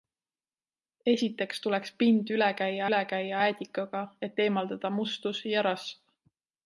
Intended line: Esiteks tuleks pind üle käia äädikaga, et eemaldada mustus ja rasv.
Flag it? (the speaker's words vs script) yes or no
yes